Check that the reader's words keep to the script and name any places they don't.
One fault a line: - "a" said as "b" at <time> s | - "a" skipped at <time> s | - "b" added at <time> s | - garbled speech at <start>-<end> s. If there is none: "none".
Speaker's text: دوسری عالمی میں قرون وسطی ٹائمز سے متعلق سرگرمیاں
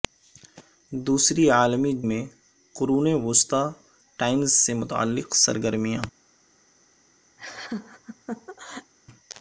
none